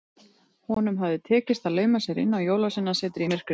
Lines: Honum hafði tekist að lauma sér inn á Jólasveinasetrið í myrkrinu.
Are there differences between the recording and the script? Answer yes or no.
no